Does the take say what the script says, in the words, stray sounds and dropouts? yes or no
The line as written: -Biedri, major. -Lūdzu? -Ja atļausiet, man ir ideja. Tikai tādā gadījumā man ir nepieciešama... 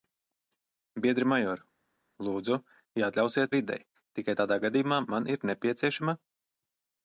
no